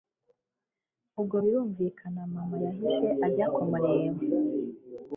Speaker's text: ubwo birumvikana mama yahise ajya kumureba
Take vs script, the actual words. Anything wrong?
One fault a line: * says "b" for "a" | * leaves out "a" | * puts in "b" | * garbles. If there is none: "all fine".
all fine